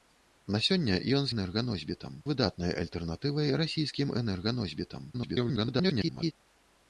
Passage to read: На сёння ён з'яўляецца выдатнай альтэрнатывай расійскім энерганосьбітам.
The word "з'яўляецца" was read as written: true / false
false